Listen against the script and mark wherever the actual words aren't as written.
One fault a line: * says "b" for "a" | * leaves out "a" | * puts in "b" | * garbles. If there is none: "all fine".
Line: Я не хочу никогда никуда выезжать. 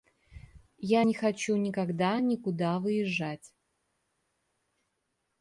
all fine